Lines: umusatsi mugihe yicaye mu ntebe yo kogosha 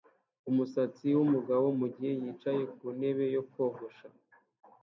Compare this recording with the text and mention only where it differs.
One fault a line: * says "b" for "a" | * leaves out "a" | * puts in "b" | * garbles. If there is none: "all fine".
* puts in "wumugabo"
* says "ku" for "mu"